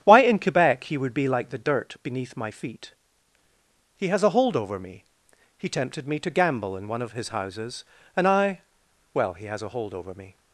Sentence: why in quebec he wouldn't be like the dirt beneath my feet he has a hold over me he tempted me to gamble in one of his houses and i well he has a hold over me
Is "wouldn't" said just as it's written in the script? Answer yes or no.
no